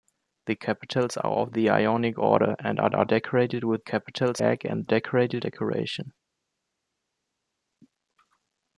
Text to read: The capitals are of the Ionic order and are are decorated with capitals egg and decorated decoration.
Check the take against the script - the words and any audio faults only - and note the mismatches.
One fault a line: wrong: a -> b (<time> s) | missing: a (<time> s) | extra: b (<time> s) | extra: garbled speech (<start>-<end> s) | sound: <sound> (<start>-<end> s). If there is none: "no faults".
no faults